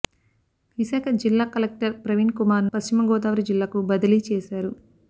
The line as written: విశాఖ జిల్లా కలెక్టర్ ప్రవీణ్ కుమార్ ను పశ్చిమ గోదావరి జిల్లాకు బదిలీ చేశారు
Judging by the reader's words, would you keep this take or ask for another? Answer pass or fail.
fail